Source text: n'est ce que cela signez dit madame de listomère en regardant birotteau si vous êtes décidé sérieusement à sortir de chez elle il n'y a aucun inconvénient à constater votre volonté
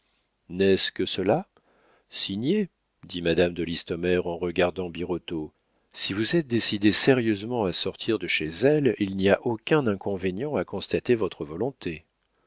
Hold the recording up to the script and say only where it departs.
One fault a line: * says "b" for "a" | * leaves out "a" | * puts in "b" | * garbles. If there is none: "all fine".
all fine